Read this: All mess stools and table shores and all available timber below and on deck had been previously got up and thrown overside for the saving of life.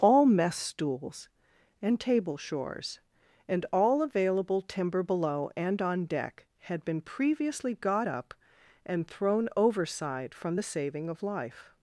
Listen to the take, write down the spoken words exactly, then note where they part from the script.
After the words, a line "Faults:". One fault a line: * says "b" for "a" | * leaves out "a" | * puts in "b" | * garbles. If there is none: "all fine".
All mess stools and table shores and all available timber below and on deck had been previously got up and thrown overside from the saving of life.
Faults:
* says "from" for "for"